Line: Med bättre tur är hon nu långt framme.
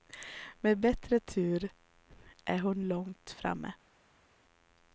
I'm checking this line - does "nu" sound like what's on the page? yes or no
no